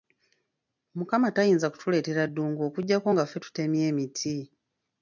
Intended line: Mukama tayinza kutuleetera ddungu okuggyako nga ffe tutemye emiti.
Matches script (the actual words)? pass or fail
pass